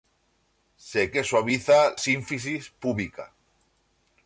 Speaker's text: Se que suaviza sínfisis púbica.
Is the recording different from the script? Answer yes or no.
no